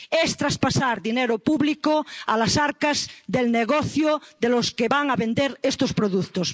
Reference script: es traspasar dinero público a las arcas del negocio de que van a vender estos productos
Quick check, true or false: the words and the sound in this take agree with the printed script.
false